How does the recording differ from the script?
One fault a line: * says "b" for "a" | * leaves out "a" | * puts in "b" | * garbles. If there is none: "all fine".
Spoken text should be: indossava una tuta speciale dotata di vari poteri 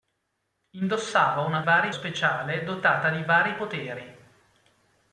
* says "vari" for "tuta"